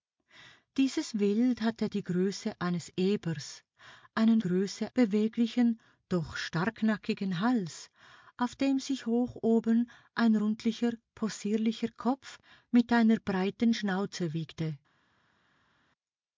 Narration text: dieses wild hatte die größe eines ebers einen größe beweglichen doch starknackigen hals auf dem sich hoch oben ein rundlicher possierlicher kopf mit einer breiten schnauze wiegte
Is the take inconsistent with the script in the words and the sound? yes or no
no